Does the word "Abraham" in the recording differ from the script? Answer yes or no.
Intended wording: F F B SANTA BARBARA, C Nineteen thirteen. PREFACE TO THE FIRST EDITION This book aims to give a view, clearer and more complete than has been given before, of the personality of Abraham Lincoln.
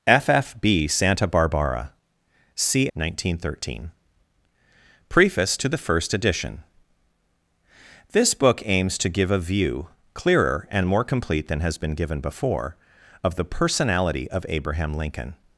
no